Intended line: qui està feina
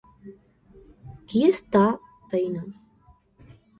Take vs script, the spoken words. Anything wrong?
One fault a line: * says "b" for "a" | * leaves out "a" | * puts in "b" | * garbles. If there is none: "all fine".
all fine